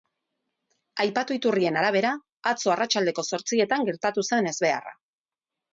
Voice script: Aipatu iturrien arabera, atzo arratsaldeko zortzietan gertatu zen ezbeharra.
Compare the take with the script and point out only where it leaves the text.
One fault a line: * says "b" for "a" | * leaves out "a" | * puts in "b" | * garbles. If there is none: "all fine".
all fine